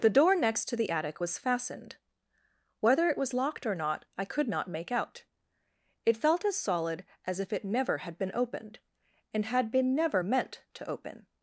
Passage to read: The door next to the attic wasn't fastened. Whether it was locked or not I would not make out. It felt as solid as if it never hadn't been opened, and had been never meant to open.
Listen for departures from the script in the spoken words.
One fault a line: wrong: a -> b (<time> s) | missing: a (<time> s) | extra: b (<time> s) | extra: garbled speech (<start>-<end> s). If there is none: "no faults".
wrong: wasn't -> was (1.2 s)
wrong: would -> could (4.2 s)
wrong: hadn't -> had (8.0 s)